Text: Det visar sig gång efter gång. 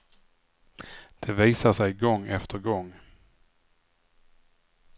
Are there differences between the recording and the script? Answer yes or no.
no